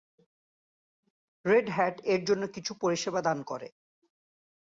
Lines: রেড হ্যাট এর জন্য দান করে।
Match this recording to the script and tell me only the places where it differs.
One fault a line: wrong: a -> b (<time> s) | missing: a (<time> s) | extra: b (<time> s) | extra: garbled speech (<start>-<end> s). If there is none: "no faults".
extra: কিছু পরিষেবা (2.5 s)